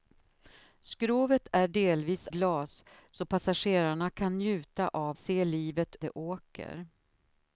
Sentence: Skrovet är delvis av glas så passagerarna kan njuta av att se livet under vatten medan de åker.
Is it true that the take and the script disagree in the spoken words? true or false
true